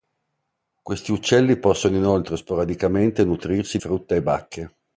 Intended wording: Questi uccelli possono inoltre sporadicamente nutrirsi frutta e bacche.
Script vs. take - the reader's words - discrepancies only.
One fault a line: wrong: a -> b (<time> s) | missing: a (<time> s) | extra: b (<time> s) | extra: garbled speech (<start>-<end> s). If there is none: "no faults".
no faults